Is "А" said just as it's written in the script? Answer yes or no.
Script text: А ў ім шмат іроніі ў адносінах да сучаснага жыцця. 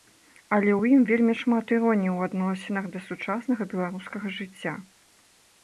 no